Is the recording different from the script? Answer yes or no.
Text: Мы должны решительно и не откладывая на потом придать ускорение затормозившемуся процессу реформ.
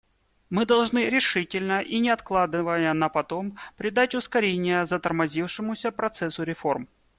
no